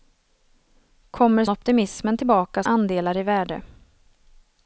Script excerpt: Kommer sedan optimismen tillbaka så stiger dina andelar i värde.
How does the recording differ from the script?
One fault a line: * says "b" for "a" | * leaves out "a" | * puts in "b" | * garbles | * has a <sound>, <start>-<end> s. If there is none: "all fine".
* leaves out "sedan"
* leaves out "så stiger dina"